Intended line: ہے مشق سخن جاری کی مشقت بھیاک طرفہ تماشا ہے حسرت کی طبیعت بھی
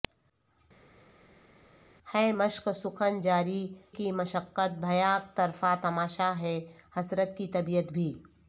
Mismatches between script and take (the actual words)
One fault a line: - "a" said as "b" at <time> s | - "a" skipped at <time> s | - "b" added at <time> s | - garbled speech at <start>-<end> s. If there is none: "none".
none